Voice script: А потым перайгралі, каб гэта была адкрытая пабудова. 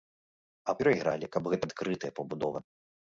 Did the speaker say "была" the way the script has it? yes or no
no